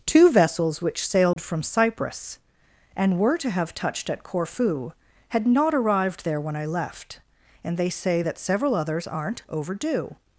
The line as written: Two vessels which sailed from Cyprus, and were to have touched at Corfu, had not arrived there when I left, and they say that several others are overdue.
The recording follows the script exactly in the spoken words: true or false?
false